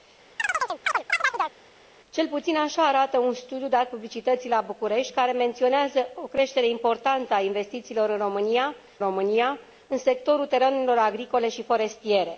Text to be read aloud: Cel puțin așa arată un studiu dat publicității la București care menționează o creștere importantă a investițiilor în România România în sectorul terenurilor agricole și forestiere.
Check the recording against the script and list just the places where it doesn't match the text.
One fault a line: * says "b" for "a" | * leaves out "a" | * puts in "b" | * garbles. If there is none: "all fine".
all fine